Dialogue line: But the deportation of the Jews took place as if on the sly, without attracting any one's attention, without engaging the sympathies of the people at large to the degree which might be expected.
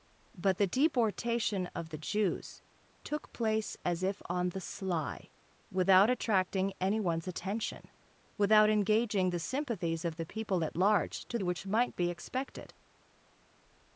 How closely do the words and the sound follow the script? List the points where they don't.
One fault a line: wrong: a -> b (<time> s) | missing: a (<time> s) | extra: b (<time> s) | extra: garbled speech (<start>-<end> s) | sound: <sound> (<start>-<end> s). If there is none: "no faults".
missing: the degree (11.4 s)